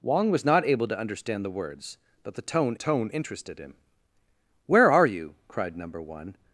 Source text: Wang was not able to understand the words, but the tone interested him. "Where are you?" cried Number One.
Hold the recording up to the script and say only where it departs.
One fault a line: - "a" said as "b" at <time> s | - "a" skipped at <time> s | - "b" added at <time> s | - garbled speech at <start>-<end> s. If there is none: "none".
- "tone" added at 2.7 s